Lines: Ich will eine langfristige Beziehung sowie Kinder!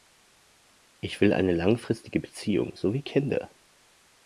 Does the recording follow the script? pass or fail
pass